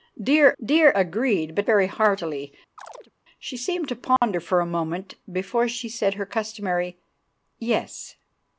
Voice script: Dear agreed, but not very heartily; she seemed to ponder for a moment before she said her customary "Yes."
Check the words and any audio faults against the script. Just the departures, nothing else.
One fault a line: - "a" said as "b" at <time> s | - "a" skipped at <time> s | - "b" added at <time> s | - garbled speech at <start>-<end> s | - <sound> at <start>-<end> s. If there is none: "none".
- "dear" added at 0.6 s
- "not" skipped at 1.7 s
- chirp at 2.8-3.1 s
- dropout at 4.2-4.2 s